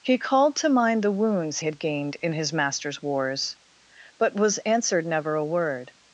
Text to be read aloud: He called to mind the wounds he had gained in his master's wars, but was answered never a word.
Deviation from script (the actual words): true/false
true